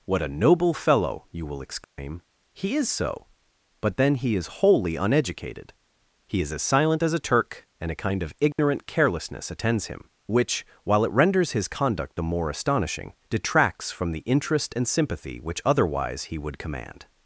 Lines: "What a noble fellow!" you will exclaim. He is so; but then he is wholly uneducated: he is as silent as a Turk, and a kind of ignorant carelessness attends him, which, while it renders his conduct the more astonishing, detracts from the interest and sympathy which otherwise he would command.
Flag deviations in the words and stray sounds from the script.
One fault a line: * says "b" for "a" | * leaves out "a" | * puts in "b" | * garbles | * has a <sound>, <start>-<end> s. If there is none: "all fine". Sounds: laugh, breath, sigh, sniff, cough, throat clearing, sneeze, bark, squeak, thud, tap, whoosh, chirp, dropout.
* has a dropout, 1.8-2.0 s